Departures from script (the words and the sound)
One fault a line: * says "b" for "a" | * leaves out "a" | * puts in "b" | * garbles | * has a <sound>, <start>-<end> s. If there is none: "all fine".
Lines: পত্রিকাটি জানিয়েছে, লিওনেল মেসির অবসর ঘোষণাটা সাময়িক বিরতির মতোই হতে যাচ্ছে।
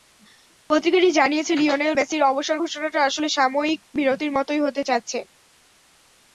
* puts in "আসলে"